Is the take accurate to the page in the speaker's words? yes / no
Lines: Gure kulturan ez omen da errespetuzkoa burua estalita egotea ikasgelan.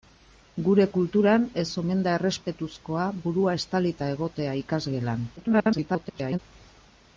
no